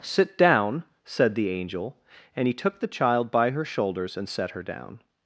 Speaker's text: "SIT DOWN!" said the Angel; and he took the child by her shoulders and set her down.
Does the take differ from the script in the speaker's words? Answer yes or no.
no